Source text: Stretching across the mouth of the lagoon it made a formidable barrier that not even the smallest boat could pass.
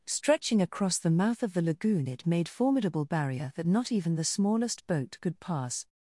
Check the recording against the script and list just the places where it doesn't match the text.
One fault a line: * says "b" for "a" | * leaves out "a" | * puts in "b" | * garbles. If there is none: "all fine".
* leaves out "a"